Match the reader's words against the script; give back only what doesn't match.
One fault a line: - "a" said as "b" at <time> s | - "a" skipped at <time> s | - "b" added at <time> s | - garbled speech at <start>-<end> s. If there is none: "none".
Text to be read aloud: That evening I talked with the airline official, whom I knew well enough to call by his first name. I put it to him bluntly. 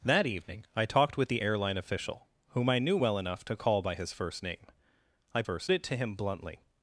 - "put" said as "first" at 5.4 s